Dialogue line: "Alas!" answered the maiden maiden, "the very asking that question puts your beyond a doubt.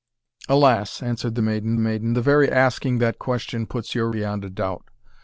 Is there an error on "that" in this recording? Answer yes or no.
no